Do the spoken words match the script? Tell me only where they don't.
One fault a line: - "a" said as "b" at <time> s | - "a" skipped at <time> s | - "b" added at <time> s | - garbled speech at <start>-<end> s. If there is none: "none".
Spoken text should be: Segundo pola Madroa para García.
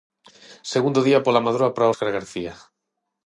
- "día" added at 1.1 s
- "Óscar" added at 1.9 s